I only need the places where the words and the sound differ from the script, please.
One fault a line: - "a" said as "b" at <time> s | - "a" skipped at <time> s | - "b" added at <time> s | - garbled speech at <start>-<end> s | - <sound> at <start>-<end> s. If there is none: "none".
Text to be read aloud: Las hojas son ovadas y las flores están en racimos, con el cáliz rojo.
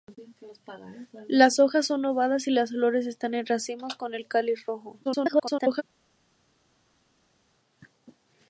- garbled speech at 5.0-5.8 s